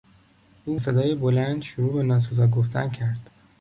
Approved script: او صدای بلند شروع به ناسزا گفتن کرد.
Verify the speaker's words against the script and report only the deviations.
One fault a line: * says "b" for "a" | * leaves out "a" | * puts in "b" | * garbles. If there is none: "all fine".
all fine